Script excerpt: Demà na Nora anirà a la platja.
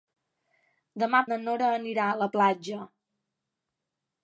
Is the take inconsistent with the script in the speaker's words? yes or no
no